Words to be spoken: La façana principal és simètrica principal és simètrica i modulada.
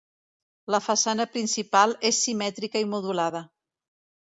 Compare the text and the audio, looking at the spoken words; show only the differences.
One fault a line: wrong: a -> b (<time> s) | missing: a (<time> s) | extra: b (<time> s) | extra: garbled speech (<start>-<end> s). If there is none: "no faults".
missing: principal és simètrica (2.9 s)